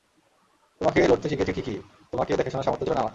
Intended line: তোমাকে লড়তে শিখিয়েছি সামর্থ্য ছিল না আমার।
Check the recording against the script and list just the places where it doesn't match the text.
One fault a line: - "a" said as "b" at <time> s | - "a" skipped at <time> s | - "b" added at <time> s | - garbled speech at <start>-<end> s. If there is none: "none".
- "ঠিকই তোমাকে দেখাশোনার" added at 1.6 s